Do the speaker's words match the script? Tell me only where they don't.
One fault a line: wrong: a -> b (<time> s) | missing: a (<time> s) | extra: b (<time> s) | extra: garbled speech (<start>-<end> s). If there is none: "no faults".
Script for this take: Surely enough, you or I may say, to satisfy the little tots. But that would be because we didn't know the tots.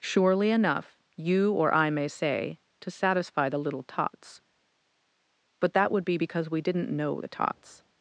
no faults